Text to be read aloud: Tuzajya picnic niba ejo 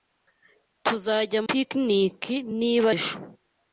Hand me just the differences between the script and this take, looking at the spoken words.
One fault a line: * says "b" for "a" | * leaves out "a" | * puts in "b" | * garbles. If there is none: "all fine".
all fine